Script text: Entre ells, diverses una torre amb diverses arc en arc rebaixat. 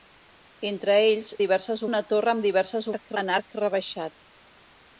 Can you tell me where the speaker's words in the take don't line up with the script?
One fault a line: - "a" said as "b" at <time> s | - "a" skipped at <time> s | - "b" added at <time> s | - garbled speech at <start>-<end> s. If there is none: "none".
none